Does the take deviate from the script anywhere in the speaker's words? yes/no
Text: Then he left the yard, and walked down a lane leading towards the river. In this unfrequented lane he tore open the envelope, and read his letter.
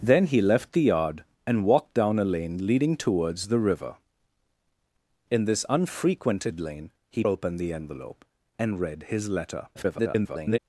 yes